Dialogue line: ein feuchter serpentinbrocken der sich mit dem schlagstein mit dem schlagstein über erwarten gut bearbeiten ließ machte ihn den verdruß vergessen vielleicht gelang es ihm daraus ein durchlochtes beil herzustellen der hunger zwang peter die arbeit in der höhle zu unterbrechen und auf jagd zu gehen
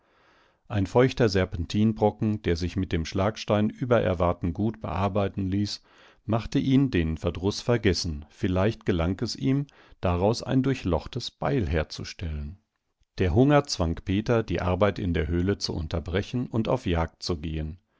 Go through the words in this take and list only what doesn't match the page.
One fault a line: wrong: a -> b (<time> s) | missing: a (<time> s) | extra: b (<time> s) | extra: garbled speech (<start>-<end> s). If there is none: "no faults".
missing: mit dem schlagstein (3.7 s)